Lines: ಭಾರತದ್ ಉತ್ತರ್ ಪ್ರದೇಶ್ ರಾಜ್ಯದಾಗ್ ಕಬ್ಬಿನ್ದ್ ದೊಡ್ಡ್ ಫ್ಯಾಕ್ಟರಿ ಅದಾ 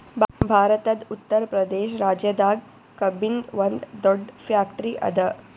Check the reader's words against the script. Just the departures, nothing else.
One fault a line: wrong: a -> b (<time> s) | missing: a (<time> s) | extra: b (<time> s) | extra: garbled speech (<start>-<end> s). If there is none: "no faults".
extra: ಒಂದ್ (3.6 s)